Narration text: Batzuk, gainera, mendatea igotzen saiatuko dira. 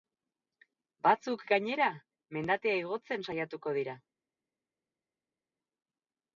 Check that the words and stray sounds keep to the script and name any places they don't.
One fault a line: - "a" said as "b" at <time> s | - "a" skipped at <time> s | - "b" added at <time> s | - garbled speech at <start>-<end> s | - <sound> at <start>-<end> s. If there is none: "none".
none